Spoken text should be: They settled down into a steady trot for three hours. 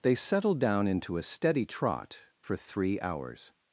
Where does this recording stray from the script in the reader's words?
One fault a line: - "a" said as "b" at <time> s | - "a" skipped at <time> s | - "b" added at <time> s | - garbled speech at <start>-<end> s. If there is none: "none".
none